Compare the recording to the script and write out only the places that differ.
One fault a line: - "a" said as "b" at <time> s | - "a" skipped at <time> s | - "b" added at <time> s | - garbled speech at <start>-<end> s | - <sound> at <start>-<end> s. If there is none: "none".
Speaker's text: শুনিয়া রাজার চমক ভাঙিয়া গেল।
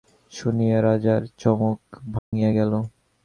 - dropout at 2.2-2.3 s